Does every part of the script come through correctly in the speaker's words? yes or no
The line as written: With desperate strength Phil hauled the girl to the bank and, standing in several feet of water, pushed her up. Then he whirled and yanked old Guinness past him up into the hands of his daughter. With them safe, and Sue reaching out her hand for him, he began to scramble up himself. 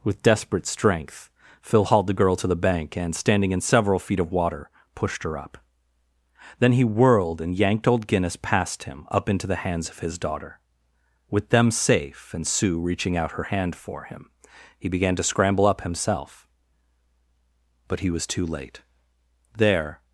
no